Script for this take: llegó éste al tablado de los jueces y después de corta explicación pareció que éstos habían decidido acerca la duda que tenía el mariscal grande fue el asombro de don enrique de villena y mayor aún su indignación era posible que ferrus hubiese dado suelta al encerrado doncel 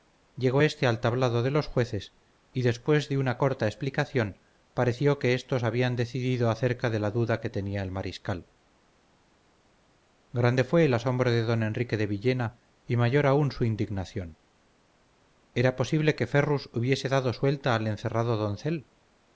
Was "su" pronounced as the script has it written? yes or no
yes